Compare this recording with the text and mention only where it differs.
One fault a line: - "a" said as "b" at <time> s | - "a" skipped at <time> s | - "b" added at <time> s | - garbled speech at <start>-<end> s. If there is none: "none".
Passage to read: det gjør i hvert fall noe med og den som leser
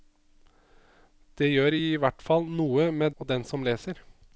none